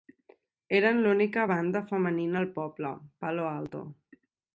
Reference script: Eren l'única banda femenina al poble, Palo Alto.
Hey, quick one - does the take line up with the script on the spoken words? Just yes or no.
yes